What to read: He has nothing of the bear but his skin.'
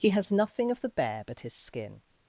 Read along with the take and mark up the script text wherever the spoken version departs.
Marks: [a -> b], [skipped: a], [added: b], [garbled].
He has nothing of the bear but his skin.'